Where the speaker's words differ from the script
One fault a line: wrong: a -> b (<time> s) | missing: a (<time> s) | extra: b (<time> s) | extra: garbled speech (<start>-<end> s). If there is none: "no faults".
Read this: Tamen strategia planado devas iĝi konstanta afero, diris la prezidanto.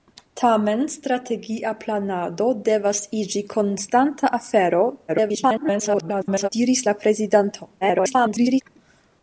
extra: garbled speech (5.1-6.5 s)
extra: garbled speech (7.8-8.6 s)